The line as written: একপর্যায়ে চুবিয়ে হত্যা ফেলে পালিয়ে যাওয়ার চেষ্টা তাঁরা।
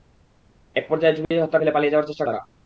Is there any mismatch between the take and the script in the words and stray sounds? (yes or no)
yes